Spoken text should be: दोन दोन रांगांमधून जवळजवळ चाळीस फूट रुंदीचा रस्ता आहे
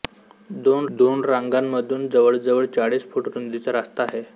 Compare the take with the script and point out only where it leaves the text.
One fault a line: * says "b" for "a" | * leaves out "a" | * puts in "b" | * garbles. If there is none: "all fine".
all fine